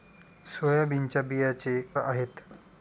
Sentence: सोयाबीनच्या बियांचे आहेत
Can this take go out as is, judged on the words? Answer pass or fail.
pass